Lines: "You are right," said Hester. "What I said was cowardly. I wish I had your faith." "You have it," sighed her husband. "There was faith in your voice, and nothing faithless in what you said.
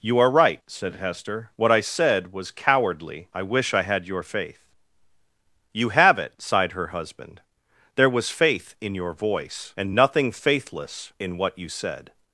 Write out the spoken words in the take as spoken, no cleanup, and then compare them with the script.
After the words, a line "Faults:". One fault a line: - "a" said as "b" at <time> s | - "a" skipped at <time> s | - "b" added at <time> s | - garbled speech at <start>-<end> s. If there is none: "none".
"You are right," said Hester. "What I said was cowardly. I wish I had your faith." "You have it," sighed her husband. "There was faith in your voice, and nothing faithless in what you said.
Faults:
none